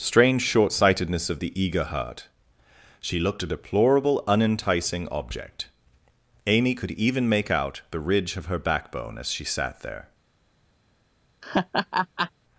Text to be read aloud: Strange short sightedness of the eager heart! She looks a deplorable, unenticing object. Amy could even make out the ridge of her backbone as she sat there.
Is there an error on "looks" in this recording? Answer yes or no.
yes